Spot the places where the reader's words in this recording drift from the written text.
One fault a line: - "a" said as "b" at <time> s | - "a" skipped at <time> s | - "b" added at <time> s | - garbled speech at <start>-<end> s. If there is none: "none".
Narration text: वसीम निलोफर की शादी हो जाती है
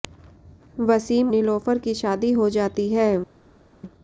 none